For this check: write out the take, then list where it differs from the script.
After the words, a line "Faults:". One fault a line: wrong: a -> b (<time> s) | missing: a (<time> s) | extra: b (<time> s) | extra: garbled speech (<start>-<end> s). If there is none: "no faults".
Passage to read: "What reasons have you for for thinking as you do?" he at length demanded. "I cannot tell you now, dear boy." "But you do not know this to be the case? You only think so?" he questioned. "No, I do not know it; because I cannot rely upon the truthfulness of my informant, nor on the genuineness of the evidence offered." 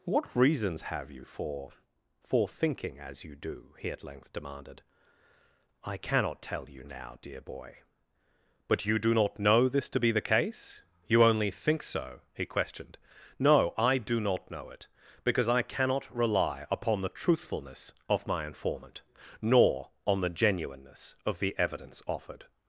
"What reasons have you for for thinking as you do?" he at length demanded. "I cannot tell you now, dear boy." "But you do not know this to be the case? You only think so?" he questioned. "No, I do not know it; because I cannot rely upon the truthfulness of my informant, nor on the genuineness of the evidence offered."
Faults:
no faults